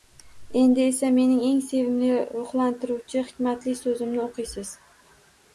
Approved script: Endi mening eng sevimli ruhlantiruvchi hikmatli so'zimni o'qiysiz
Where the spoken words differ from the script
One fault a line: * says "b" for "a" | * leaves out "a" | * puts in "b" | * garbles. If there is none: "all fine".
* puts in "esa"